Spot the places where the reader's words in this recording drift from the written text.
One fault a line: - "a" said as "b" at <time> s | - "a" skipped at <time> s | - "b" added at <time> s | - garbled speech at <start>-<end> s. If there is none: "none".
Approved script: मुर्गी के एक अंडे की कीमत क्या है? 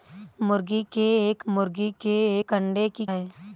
- "मुर्गी के एक" added at 1.5 s
- "कीमत क्या" skipped at 3.0 s